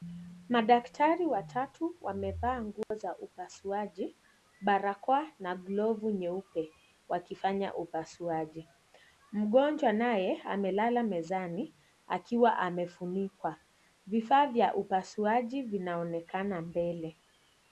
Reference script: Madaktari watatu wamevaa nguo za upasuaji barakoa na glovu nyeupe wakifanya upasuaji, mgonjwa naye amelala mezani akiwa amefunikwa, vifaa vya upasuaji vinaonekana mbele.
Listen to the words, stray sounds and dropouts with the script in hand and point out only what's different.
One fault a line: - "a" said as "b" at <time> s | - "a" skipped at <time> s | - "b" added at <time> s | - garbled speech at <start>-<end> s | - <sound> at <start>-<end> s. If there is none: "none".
- dropout at 2.8-2.9 s